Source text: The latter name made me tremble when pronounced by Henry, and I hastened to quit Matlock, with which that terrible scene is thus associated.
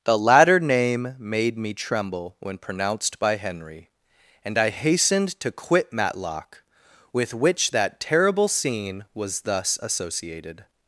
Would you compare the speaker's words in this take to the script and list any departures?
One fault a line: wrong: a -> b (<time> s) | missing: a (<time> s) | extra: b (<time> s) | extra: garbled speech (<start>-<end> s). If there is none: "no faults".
wrong: is -> was (9.1 s)